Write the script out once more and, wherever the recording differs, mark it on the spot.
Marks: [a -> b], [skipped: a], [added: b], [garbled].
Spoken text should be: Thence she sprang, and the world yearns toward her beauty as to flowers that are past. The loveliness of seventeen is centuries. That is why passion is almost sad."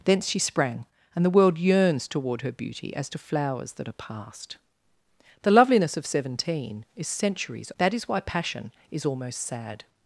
Thence she sprang, and the world yearns toward her beauty as to flowers that are past. The loveliness of seventeen is centuries. That is why passion is almost sad."